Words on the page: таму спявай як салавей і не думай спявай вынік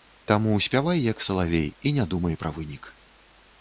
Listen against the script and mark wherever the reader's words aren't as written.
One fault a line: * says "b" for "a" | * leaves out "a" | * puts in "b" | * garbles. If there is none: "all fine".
* says "пра" for "спявай"